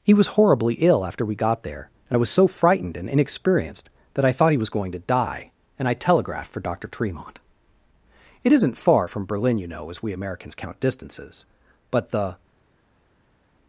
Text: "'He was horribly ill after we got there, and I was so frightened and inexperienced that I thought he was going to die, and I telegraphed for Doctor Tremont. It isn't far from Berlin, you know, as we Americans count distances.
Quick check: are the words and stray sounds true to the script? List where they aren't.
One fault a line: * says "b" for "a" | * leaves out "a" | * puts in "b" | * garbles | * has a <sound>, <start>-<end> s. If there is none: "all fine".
* puts in "But the"